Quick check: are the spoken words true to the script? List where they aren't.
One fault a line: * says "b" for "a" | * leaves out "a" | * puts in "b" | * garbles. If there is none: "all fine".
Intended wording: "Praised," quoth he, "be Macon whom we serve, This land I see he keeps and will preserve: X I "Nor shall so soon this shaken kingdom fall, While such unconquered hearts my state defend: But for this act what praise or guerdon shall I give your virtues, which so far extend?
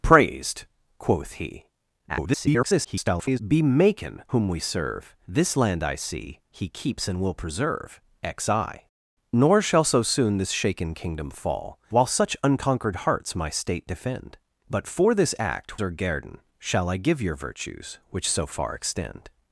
* garbles
* leaves out "what praise"